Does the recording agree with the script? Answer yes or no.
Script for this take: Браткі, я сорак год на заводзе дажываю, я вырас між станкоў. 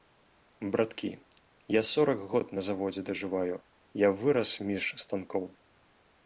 yes